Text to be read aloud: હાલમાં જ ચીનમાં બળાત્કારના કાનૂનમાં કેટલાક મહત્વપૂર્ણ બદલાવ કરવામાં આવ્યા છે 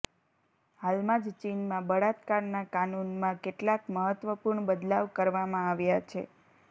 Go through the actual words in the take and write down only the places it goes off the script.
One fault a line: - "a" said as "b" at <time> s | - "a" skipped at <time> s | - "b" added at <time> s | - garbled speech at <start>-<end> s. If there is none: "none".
none